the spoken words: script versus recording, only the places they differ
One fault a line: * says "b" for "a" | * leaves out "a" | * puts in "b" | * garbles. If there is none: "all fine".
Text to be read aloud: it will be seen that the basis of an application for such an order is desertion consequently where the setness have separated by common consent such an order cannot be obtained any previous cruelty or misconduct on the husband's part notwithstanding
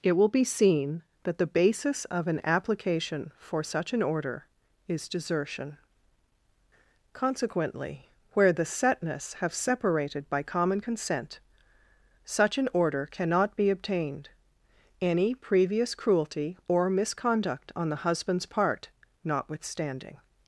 all fine